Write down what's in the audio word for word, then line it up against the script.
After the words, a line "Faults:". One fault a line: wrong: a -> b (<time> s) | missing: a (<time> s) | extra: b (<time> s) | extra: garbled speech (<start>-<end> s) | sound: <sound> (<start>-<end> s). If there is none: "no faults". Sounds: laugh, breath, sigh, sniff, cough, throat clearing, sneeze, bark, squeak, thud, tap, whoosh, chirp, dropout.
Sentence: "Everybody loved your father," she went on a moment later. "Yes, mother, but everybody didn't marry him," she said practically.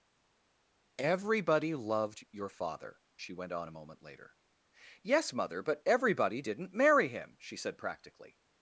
"Everybody loved your father," she went on a moment later. "Yes, mother, but everybody didn't marry him," she said practically.
Faults:
no faults